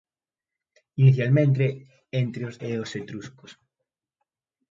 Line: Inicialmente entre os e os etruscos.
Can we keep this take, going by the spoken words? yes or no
yes